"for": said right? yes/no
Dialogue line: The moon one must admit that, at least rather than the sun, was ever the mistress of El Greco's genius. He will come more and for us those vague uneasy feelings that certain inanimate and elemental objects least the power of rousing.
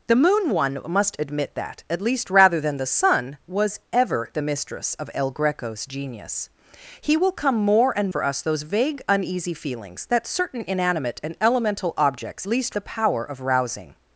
yes